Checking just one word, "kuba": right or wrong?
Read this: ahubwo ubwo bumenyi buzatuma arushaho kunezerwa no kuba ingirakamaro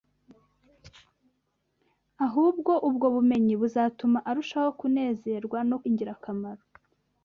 wrong